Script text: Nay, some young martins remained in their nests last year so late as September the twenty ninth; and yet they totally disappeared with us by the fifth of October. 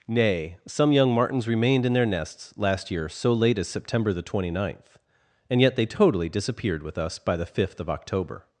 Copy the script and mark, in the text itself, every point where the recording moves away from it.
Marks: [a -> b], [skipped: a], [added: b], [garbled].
Nay, some young martins remained in their nests last year so late as September the twenty ninth; and yet they totally disappeared with us by the fifth of October.